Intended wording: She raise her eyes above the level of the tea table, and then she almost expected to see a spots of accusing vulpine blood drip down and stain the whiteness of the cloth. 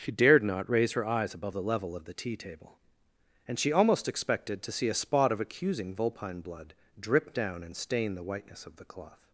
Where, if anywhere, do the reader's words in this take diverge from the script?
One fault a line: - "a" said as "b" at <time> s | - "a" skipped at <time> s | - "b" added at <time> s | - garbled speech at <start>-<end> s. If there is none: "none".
- "dared not" added at 0.1 s
- "then" skipped at 3.6 s
- "spots" said as "spot" at 4.9 s